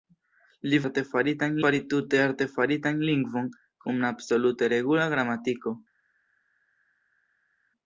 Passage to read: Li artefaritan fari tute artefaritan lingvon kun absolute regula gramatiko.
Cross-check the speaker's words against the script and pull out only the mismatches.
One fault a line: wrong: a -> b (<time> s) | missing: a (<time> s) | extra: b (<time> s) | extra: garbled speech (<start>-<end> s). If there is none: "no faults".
no faults